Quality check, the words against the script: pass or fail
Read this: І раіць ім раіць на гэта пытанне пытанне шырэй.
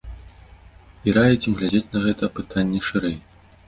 fail